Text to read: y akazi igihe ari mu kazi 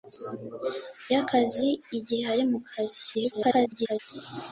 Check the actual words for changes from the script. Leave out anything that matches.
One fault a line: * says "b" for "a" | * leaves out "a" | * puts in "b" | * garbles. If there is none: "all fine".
* garbles